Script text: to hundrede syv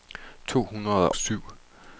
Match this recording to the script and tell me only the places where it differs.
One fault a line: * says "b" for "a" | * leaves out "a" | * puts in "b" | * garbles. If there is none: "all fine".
all fine